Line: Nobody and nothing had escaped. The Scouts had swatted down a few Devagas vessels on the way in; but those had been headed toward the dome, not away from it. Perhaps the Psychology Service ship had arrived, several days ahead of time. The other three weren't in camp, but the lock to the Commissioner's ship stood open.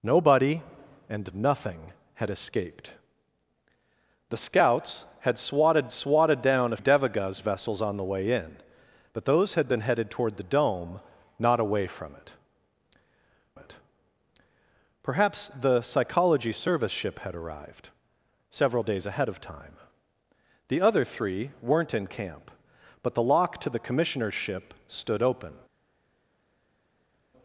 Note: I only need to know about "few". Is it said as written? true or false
false